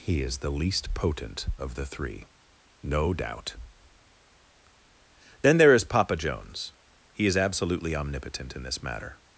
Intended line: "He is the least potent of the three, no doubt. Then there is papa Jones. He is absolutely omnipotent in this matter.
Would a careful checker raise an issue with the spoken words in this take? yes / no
no